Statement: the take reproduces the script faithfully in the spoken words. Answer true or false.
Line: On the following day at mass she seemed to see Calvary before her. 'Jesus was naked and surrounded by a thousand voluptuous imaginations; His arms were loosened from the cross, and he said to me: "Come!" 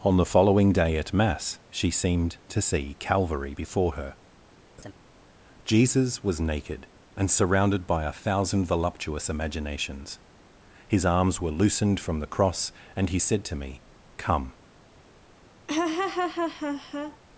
true